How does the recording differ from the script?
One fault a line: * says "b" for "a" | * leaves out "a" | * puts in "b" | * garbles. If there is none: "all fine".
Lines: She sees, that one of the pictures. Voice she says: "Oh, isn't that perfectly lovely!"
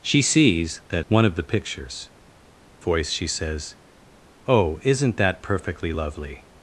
all fine